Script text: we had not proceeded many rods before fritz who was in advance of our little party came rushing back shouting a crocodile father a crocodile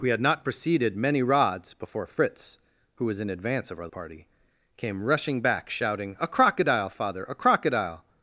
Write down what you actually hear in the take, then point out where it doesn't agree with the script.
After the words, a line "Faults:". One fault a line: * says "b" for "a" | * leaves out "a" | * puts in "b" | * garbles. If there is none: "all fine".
we had not proceeded many rods before fritz who was in advance of our party came rushing back shouting a crocodile father a crocodile
Faults:
* leaves out "little"